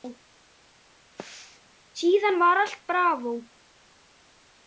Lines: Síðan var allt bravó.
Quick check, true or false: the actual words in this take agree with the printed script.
true